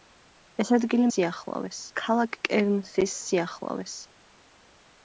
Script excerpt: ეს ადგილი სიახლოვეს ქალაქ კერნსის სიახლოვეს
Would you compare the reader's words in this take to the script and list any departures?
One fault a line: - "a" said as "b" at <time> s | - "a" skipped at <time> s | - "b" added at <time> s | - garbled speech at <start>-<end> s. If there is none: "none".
none